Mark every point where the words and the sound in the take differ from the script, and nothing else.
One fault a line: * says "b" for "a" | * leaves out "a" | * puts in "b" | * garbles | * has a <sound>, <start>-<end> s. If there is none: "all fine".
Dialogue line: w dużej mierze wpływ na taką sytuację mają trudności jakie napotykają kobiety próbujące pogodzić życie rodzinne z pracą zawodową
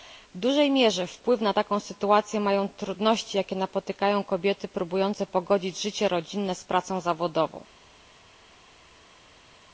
all fine